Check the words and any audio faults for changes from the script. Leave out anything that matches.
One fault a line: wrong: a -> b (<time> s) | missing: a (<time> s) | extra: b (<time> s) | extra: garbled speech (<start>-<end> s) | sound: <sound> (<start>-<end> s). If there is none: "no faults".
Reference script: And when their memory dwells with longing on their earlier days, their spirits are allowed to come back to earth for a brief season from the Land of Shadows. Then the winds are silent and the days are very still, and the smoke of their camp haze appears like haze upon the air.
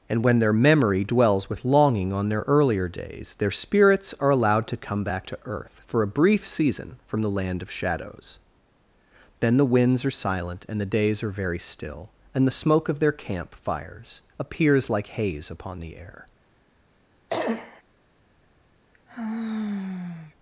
wrong: haze -> fires (13.6 s)
sound: cough (17.3-17.8 s)
sound: sigh (18.9-20.3 s)